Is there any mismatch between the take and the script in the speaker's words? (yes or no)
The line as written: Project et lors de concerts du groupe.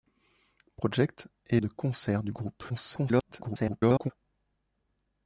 yes